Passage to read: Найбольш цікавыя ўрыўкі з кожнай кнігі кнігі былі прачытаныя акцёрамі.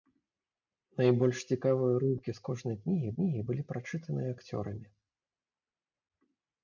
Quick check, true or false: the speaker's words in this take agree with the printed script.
true